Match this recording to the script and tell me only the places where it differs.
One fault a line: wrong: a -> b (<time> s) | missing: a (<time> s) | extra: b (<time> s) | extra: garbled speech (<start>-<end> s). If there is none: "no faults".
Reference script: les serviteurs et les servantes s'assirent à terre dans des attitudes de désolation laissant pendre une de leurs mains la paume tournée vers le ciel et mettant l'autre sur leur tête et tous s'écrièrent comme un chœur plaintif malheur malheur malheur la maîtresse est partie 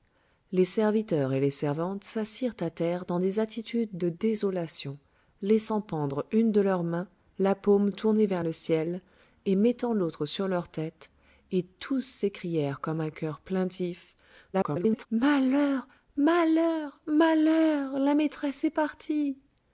extra: garbled speech (14.5-15.1 s)